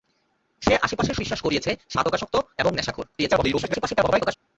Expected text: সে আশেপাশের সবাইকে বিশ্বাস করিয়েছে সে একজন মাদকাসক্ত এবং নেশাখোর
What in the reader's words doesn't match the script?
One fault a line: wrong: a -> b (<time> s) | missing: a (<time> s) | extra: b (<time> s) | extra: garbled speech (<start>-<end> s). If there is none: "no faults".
missing: সবাইকে (1.2 s)
missing: একজন (2.0 s)
extra: garbled speech (3.1-4.4 s)